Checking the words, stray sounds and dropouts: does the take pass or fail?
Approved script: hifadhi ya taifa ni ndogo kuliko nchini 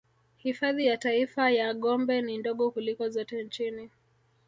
fail